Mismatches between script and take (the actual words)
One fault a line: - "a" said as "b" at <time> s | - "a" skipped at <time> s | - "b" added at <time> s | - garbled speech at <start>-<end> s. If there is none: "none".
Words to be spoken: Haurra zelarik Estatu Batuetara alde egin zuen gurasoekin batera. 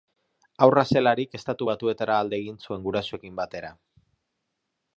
none